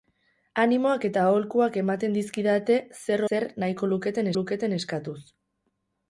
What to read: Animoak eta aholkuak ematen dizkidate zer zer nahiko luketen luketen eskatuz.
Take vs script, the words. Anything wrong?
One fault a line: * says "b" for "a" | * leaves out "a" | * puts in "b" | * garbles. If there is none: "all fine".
all fine